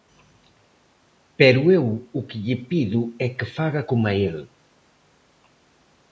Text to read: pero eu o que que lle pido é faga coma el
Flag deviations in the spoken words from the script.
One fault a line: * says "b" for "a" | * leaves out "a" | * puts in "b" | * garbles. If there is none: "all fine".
* leaves out "que"
* puts in "que"